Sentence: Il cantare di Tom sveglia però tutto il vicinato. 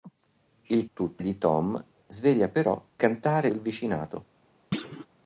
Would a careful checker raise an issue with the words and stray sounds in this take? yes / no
yes